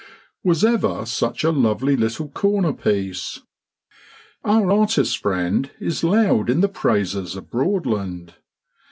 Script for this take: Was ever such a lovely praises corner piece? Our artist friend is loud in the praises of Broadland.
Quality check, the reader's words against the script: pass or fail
fail